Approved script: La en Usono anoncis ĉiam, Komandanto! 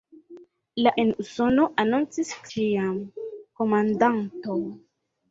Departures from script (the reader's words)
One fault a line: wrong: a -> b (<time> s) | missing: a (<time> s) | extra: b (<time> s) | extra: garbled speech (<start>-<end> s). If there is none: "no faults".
no faults